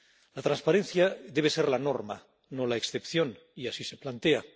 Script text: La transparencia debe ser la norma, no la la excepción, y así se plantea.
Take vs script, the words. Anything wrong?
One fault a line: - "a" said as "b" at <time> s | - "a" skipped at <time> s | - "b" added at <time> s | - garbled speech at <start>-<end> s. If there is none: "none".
- "la" skipped at 2.8 s